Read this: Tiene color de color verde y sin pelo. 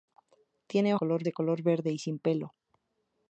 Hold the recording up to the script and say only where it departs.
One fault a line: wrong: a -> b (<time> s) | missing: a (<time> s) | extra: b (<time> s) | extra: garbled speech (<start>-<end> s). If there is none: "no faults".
no faults